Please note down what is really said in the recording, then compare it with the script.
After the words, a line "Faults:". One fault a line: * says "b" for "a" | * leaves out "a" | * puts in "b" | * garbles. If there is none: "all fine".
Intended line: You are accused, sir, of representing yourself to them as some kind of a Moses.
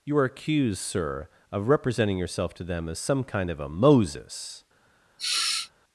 You are accused, sir, of representing yourself to them as some kind of a Moses.
Faults:
all fine